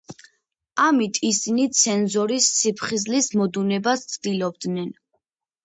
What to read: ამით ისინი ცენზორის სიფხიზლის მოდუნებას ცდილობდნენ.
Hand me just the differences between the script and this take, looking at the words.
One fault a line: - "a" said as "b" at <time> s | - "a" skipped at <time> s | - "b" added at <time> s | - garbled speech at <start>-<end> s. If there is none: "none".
none